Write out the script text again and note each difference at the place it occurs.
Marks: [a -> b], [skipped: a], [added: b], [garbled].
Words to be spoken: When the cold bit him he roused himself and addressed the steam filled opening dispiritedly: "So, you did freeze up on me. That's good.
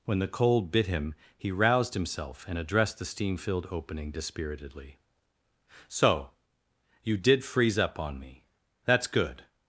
When the cold bit him he roused himself and addressed the steam filled opening dispiritedly: "So, you did freeze up on me. That's good.